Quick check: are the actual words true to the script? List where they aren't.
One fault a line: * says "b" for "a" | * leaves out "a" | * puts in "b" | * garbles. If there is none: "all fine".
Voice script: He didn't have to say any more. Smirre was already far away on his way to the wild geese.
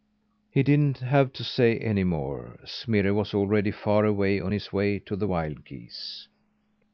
all fine